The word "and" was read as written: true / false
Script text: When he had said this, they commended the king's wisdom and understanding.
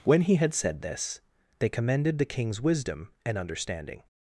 true